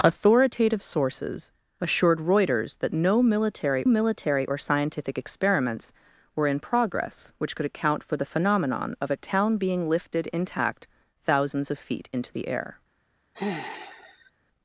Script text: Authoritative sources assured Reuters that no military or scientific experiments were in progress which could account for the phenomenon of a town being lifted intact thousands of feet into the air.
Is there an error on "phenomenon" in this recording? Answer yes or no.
no